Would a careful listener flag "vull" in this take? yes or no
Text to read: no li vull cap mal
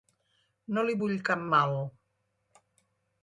no